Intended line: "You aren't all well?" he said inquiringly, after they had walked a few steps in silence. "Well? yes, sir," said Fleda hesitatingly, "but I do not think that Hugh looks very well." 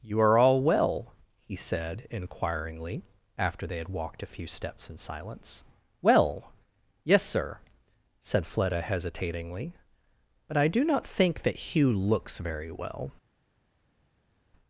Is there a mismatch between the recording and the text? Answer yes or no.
yes